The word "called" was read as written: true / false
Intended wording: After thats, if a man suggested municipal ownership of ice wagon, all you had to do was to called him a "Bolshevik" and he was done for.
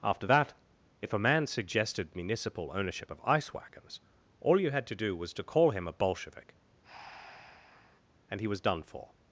false